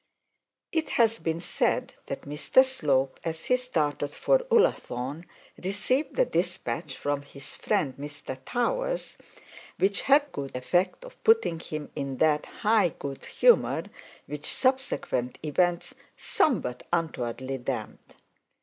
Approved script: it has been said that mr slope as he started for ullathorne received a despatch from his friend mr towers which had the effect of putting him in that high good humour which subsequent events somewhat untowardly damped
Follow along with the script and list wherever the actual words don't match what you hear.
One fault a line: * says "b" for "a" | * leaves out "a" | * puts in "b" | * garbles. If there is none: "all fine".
* says "good" for "the"